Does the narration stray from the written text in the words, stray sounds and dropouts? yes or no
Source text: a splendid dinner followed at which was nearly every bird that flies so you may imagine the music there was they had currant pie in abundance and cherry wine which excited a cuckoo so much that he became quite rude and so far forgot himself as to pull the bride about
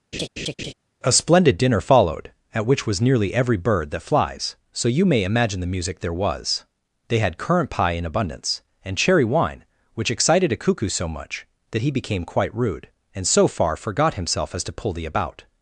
yes